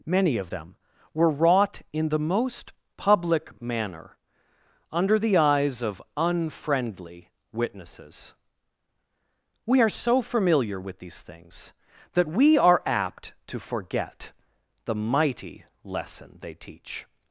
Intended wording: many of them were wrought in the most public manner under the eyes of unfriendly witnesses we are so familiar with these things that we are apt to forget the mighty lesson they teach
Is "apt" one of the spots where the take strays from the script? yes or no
no